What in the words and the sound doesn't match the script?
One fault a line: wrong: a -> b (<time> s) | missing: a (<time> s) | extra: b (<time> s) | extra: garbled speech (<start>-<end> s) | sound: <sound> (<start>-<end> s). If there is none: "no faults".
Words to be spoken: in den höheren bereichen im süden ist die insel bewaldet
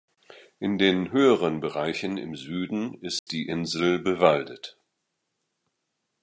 sound: dropout (3.2-3.3 s)